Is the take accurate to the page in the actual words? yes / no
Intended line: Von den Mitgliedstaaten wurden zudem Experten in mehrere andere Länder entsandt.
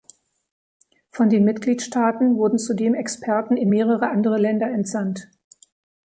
yes